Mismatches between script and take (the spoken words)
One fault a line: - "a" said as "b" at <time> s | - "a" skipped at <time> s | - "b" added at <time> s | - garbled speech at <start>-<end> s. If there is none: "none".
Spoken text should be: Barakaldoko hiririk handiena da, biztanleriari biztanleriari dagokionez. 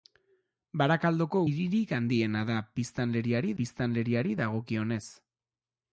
none